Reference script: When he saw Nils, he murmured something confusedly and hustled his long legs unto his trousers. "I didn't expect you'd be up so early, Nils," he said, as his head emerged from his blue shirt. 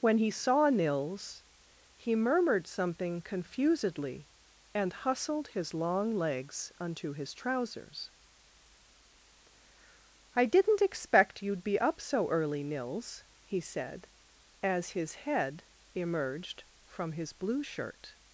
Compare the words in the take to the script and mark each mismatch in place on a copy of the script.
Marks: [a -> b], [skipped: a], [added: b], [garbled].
When he saw Nils, he murmured something confusedly and hustled his long legs unto his trousers. "I didn't expect you'd be up so early, Nils," he said, as his head emerged from his blue shirt.